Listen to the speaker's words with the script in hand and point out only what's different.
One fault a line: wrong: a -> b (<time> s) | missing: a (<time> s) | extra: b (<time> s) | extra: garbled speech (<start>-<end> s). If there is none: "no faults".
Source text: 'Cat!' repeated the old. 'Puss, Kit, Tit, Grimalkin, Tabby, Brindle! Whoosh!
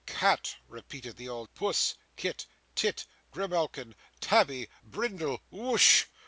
no faults